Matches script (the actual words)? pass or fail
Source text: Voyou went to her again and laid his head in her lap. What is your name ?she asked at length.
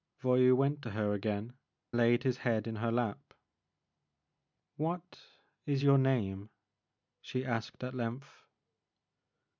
fail